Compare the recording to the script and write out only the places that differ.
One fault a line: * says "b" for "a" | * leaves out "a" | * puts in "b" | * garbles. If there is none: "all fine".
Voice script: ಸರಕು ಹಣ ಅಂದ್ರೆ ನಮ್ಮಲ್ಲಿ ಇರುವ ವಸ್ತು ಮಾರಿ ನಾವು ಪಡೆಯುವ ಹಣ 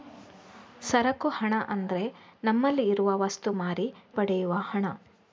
* leaves out "ನಾವು"